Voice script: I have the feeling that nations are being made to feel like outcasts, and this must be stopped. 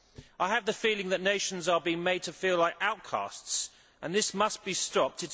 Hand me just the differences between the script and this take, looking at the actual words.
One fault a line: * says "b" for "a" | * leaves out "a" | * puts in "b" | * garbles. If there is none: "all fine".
all fine